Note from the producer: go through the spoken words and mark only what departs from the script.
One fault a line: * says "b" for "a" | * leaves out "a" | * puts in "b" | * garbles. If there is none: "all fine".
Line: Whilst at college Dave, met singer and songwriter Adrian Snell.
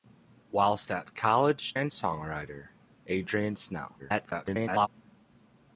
* leaves out "Dave met singer"
* garbles